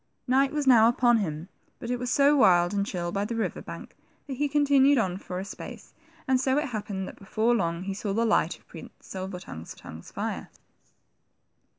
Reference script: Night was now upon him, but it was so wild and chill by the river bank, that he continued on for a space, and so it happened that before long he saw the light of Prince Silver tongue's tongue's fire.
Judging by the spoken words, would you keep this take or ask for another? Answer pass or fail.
pass